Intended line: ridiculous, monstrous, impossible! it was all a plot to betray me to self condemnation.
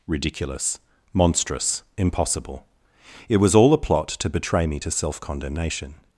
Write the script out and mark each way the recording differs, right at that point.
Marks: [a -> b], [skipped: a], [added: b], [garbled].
ridiculous, monstrous, impossible! it was all a plot to betray me to self condemnation.